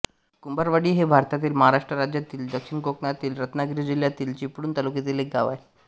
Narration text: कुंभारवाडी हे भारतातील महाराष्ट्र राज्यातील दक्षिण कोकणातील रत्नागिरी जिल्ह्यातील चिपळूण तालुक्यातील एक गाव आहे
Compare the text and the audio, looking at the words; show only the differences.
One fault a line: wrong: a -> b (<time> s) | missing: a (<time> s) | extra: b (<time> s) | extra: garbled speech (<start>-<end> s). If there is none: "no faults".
no faults